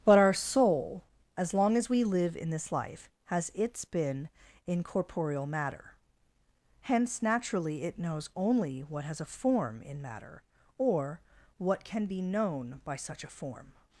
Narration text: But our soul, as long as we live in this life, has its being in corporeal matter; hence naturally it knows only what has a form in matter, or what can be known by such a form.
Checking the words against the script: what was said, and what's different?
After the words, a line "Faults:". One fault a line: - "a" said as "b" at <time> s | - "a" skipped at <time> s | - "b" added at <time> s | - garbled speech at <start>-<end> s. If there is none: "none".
But our soul, as long as we live in this life, has its been in corporeal matter; hence naturally it knows only what has a form in matter, or what can be known by such a form.
Faults:
- "being" said as "been" at 3.9 s